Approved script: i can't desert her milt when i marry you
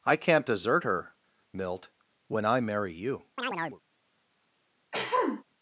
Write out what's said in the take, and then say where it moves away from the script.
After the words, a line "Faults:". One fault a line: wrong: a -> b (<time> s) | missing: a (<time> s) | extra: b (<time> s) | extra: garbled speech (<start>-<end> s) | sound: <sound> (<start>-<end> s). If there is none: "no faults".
i can't desert her milt when i marry you
Faults:
sound: chirp (3.4-3.8 s)
sound: throat clearing (4.9-5.4 s)